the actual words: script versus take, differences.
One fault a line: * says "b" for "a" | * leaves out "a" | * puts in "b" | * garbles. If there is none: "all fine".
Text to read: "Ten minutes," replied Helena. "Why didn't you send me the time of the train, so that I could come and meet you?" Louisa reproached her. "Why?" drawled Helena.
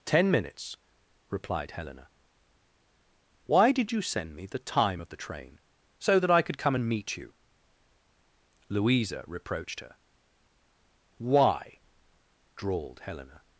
* says "did" for "didn't"